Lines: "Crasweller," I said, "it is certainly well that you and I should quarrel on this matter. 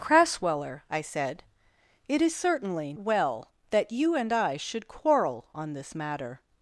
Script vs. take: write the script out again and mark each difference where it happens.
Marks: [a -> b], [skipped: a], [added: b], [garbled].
"Crasweller," I said, "it is certainly well that you and I should quarrel on this matter.